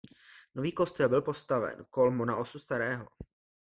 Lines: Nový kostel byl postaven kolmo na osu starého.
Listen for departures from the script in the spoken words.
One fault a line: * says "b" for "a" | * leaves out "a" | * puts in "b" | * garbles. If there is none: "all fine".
all fine